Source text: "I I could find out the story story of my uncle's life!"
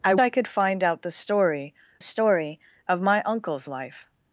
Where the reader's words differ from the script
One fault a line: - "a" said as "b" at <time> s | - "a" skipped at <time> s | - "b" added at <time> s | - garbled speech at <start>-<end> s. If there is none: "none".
none